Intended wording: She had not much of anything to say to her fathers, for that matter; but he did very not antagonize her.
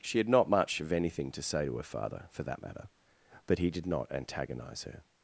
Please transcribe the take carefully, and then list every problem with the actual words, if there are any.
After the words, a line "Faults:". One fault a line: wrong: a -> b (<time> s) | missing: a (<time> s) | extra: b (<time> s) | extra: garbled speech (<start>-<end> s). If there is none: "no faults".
She had not much of anything to say to her father, for that matter; but he did not antagonize her.
Faults:
wrong: fathers -> father (1.8 s)
missing: very (3.9 s)